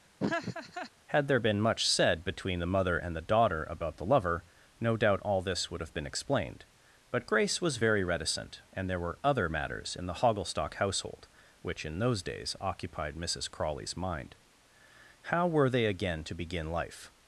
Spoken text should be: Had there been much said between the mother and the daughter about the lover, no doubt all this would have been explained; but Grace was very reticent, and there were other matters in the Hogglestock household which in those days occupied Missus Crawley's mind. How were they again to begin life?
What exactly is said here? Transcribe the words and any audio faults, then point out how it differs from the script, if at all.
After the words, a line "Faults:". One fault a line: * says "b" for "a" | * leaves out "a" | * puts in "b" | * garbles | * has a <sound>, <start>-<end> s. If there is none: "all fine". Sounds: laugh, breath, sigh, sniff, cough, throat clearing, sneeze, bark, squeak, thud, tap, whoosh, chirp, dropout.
Had there been much said between the mother and the daughter about the lover, no doubt all this would have been explained; but Grace was very reticent, and there were other matters in the Hogglestock household which in those days occupied Missus Crawley's mind. How were they again to begin life?
Faults:
* has a laugh, 0.2-0.9 s